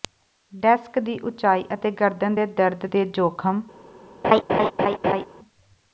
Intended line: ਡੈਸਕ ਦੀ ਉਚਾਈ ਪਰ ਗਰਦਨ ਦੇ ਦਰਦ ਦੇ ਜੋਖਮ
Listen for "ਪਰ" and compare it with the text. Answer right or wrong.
wrong